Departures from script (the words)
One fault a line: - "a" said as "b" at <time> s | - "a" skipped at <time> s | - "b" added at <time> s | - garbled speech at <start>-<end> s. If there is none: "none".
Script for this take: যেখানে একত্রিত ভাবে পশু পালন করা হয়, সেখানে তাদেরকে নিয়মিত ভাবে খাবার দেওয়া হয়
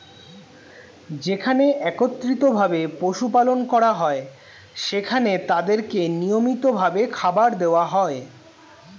none